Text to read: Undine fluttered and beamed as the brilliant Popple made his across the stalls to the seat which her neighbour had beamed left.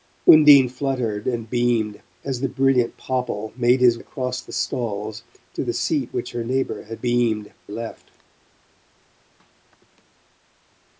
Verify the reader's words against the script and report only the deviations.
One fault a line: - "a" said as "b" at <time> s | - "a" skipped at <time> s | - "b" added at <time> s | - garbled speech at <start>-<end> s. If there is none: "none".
none